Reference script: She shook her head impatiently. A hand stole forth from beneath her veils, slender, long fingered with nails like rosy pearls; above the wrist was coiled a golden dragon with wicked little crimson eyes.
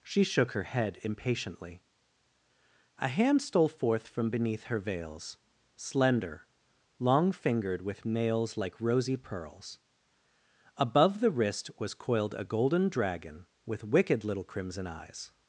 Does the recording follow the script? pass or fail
pass